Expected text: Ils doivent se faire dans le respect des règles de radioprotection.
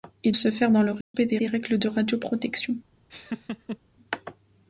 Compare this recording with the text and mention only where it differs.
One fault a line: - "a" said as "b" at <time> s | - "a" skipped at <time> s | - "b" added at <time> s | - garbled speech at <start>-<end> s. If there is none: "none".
- "doivent" skipped at 0.3 s
- "des" added at 1.4 s